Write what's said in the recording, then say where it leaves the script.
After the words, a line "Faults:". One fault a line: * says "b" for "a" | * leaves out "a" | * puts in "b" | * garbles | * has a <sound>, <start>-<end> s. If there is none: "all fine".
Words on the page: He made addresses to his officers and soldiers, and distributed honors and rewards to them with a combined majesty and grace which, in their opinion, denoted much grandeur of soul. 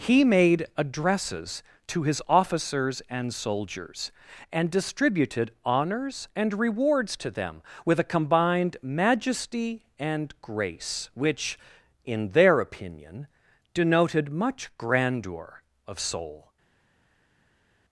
He made addresses to his officers and soldiers, and distributed honors and rewards to them with a combined majesty and grace which, in their opinion, denoted much grandeur of soul.
Faults:
all fine